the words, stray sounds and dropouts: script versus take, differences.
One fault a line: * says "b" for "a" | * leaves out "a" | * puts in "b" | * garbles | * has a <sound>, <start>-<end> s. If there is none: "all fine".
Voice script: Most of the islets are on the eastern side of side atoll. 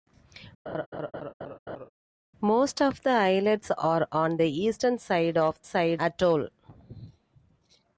* has a laugh, 0.7-1.9 s